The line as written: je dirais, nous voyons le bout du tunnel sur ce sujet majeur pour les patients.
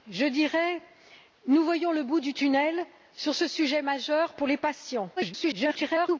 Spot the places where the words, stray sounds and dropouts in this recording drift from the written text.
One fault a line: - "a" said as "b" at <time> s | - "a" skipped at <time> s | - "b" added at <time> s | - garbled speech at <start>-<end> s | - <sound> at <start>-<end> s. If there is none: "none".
- garbled speech at 5.2-6.2 s